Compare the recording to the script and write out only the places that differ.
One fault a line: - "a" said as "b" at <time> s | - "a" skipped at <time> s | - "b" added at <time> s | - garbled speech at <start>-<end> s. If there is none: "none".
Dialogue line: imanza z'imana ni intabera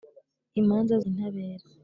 - "z'imana ni" skipped at 0.9 s